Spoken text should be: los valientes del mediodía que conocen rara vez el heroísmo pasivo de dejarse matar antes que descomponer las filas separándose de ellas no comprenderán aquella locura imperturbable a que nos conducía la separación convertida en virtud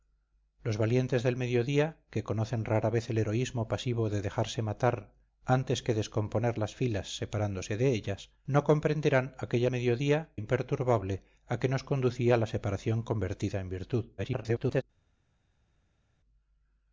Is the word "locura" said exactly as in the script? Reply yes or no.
no